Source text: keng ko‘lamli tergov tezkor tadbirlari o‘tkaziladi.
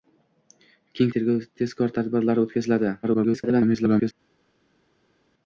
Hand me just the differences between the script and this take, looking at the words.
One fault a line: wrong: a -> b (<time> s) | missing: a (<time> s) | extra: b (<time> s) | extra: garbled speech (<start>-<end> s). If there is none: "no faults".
missing: ko‘lamli (1.1 s)
extra: garbled speech (3.0-4.1 s)